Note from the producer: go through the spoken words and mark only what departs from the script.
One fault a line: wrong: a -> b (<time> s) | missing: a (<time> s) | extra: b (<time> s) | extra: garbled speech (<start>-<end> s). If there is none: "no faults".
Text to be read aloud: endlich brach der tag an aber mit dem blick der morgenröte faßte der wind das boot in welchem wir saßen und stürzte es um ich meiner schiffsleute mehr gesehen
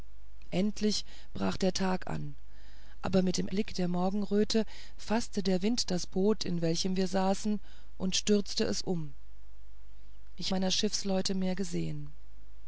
no faults